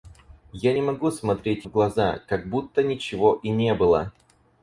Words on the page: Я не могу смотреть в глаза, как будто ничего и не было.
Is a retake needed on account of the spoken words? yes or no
no